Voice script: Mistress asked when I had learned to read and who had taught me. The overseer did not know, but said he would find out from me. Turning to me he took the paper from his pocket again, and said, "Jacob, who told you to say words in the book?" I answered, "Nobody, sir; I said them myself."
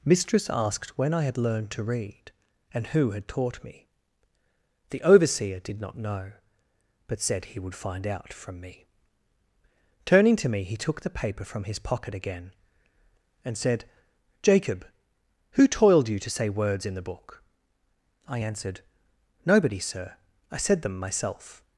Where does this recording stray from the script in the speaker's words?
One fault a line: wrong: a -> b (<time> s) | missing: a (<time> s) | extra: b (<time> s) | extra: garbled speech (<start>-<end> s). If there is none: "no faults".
wrong: told -> toiled (15.7 s)